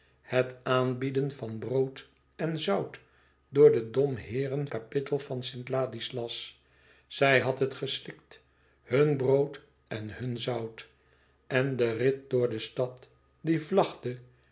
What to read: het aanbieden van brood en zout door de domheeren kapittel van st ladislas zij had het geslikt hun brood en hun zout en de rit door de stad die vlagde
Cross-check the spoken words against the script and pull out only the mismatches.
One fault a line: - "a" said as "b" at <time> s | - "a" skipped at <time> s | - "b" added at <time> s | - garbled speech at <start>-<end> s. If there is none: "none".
none